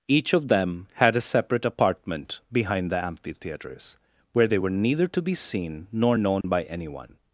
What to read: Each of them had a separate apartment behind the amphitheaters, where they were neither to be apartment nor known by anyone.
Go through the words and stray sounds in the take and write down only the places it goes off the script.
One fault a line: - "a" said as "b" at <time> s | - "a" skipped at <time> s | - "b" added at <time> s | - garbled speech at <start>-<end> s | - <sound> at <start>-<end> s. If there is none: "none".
- "apartment" said as "seen" at 5.3 s
- dropout at 6.4-6.4 s